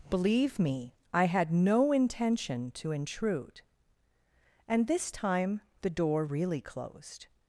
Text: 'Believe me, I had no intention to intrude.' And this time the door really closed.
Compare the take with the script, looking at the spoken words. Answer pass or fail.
pass